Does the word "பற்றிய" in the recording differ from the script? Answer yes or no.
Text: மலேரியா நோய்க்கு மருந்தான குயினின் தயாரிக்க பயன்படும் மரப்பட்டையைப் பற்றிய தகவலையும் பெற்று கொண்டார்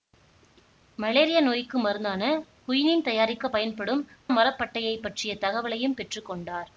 no